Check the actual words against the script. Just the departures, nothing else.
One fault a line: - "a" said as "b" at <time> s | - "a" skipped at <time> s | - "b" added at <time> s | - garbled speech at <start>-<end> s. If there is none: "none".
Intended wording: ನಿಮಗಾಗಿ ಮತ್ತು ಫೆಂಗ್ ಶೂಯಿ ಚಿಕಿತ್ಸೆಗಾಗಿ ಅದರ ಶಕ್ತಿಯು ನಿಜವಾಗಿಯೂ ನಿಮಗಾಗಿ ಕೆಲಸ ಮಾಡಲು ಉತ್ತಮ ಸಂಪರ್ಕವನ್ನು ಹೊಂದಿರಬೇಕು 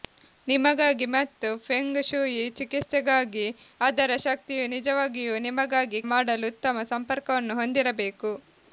- "ಕೆಲಸ" skipped at 6.0 s